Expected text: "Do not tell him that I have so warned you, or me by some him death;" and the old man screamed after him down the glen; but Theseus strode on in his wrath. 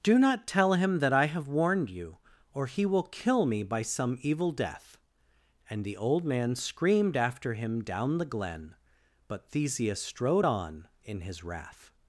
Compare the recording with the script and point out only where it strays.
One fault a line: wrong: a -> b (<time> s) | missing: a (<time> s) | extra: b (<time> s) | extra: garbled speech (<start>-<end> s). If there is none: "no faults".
missing: so (1.5 s)
extra: he will kill (2.6 s)
wrong: him -> evil (4.2 s)